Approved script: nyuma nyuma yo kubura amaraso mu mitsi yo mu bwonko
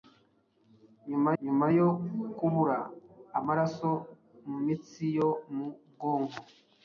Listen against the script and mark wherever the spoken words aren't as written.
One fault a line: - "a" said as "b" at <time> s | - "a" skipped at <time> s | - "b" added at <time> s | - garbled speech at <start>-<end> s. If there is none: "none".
none